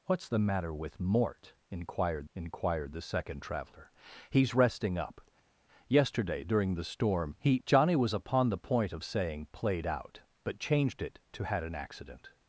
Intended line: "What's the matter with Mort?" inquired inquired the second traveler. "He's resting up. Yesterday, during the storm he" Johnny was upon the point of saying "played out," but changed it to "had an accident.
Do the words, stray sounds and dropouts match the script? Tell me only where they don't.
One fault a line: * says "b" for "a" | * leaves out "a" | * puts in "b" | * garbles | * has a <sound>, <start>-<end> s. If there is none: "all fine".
all fine